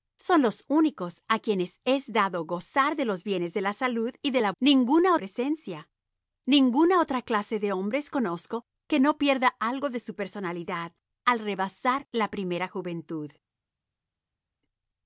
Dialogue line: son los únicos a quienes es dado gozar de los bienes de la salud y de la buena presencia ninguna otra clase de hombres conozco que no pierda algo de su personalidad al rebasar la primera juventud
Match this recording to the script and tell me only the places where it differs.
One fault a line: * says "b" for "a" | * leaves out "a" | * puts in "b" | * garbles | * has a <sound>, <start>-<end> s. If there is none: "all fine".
* says "ninguna" for "buena"